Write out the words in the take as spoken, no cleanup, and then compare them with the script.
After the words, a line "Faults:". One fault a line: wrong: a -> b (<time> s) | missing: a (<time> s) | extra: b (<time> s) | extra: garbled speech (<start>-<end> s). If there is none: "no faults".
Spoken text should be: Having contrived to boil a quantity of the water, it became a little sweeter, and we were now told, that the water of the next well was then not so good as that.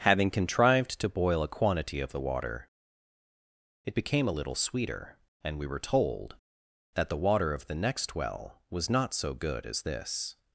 Having contrived to boil a quantity of the water, it became a little sweeter, and we were told, that the water of the next well was not so good as this.
Faults:
missing: now (5.8 s)
missing: then (8.9 s)
wrong: that -> this (9.8 s)